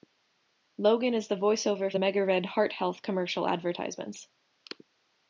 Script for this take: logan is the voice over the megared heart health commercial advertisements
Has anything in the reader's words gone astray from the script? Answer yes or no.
no